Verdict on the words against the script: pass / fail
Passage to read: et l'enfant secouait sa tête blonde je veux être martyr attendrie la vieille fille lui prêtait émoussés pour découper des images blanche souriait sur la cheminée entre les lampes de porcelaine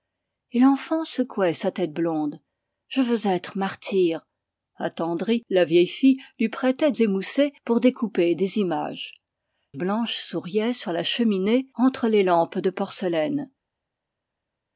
pass